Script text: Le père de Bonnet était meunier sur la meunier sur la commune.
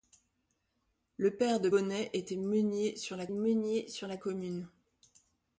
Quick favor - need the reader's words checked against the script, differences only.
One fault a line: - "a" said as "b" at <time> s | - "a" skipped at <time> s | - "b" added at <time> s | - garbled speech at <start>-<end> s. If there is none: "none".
none